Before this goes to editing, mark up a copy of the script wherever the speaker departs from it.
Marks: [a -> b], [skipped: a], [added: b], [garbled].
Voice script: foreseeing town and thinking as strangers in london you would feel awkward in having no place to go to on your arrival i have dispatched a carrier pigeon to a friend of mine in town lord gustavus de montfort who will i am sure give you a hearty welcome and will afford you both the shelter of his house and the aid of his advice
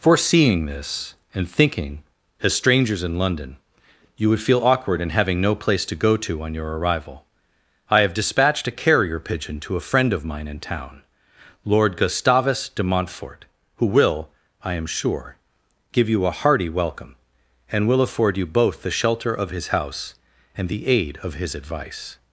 foreseeing [town -> this] and thinking as strangers in london you would feel awkward in having no place to go to on your arrival i have dispatched a carrier pigeon to a friend of mine in town lord gustavus de montfort who will i am sure give you a hearty welcome and will afford you both the shelter of his house and the aid of his advice